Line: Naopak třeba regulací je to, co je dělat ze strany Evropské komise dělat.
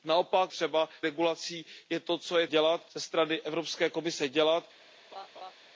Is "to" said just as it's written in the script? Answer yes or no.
yes